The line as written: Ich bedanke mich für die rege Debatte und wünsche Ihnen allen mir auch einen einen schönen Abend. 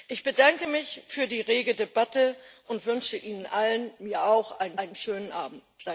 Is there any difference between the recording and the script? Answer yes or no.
no